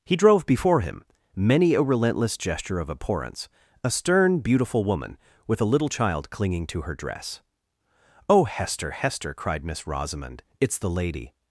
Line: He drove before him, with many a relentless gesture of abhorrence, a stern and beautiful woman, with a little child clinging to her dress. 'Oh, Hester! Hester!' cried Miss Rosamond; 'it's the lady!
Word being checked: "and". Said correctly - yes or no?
no